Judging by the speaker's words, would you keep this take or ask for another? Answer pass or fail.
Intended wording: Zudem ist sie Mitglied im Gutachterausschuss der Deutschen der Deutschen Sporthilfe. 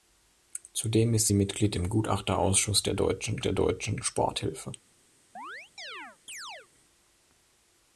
pass